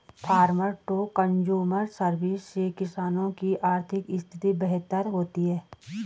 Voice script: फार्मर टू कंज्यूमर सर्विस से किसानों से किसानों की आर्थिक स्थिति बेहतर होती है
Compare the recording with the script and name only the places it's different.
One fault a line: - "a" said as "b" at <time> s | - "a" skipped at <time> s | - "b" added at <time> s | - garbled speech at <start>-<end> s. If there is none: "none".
- "से किसानों" skipped at 3.3 s